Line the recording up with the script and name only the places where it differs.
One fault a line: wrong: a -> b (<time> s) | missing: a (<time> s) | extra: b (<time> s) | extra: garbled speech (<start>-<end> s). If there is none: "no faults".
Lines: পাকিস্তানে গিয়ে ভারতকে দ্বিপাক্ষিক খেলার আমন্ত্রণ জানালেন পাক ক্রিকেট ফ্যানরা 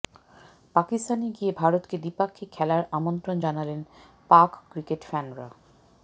no faults